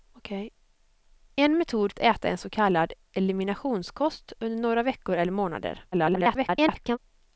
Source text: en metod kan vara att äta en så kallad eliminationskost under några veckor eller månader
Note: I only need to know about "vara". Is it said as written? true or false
false